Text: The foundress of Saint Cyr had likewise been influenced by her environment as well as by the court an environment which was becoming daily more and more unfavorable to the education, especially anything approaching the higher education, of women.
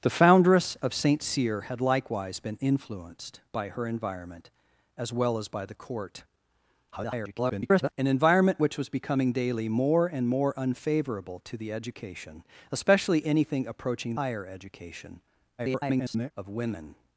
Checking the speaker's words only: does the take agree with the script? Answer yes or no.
no